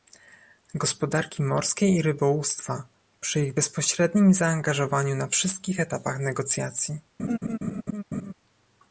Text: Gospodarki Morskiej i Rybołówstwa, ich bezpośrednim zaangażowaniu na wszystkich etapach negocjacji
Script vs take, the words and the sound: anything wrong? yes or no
yes